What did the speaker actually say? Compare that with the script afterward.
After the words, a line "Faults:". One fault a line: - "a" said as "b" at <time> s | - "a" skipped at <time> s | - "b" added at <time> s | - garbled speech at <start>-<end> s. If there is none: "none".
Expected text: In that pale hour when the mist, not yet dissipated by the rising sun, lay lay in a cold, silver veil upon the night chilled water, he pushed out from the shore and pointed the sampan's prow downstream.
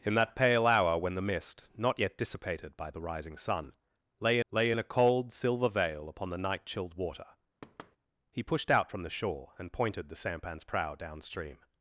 In that pale hour when the mist, not yet dissipated by the rising sun, lay lay in a cold, silver veil upon the night chilled water, he pushed out from the shore and pointed the sampan's prow downstream.
Faults:
none